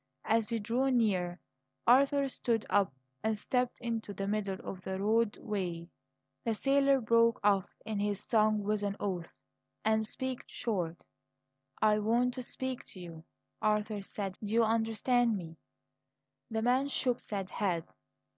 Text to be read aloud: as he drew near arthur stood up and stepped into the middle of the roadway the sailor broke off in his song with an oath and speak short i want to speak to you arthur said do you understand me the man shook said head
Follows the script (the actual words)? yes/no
yes